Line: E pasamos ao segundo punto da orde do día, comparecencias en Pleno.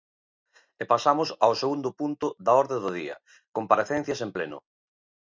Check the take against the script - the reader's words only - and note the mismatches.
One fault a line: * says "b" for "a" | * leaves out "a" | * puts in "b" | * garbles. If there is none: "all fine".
all fine